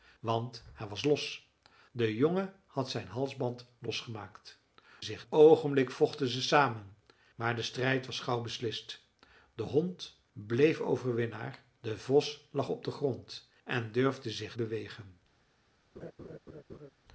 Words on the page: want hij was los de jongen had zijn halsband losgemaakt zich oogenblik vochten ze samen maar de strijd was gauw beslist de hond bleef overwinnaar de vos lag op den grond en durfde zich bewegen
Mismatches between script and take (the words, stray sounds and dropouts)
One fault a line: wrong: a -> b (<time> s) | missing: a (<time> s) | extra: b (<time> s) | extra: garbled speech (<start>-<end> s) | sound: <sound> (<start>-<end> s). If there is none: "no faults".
sound: laugh (16.0-16.9 s)